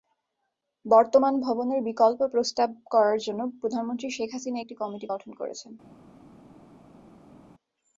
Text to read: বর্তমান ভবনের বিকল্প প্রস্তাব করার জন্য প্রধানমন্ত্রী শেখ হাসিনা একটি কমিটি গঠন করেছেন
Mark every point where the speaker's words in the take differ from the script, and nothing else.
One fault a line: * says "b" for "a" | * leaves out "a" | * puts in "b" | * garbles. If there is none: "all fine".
all fine